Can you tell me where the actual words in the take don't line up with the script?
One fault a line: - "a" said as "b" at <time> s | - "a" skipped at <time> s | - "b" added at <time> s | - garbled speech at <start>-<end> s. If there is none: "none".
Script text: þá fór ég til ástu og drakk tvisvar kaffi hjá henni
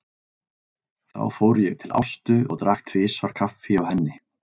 none